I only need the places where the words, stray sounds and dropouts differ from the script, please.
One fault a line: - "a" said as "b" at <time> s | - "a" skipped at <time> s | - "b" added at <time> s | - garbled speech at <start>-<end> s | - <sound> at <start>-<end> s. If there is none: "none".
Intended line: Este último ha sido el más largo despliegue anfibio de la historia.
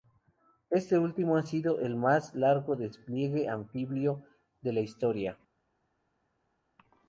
none